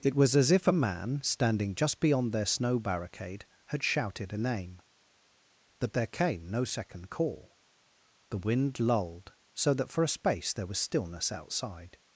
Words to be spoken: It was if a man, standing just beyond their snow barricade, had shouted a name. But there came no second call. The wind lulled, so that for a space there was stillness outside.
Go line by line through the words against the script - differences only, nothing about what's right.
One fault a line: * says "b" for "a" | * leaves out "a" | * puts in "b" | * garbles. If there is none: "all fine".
* puts in "as"